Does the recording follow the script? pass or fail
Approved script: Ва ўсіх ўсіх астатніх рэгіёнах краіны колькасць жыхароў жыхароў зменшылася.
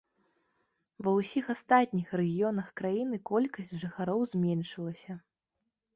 fail